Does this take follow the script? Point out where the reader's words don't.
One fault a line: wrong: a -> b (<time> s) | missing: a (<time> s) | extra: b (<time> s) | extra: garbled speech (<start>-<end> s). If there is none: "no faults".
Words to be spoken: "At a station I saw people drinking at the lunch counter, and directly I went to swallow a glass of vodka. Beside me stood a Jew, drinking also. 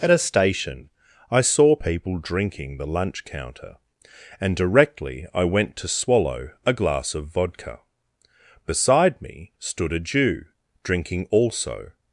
missing: at (2.8 s)